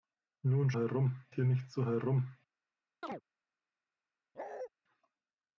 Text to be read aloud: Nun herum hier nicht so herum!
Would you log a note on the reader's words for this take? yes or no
no